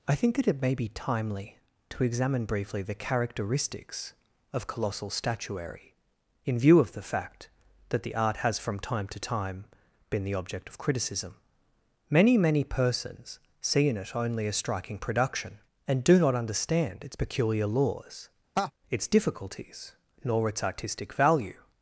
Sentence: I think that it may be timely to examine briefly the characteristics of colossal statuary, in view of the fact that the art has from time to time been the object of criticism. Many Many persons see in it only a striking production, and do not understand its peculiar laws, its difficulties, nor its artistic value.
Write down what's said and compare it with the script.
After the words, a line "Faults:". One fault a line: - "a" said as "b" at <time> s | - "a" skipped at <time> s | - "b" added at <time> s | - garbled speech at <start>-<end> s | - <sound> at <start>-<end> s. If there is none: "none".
I think that it may be timely to examine briefly the characteristics of colossal statuary, in view of the fact that the art has from time to time been the object of criticism. Many Many persons see in it only a striking production, and do not understand its peculiar laws, its difficulties, nor its artistic value.
Faults:
- laugh at 18.6-18.7 s